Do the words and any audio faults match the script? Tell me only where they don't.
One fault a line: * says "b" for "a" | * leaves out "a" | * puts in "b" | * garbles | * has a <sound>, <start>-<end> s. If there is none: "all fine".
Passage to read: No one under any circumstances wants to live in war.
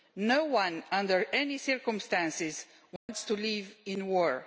* has a dropout, 3.0-3.1 s